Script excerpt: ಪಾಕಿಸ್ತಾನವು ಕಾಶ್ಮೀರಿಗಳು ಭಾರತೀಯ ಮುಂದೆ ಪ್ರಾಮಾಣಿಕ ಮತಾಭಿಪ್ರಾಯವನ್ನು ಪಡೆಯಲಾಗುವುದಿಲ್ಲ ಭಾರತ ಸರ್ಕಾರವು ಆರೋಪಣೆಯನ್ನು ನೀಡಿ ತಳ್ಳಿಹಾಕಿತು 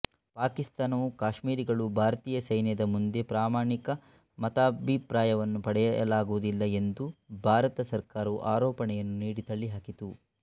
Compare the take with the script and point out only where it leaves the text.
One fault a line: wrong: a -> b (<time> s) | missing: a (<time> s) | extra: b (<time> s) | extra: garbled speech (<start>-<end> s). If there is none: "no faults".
extra: ಸೈನ್ಯದ (2.4 s)
extra: ಎಂದು (6.8 s)